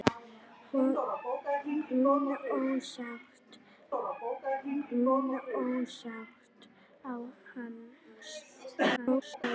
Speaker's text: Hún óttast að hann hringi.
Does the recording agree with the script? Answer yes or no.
no